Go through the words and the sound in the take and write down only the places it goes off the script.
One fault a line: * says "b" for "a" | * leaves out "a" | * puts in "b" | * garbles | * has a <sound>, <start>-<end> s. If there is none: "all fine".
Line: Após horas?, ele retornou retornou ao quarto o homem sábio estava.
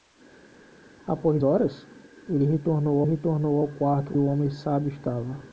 all fine